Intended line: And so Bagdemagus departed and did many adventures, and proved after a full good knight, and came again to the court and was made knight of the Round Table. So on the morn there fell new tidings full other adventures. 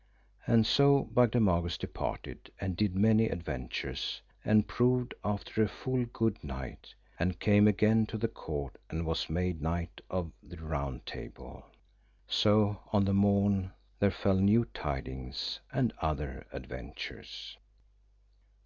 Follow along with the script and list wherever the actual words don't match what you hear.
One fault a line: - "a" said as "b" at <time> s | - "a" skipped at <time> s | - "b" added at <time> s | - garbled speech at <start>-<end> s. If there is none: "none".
- "full" said as "and" at 15.7 s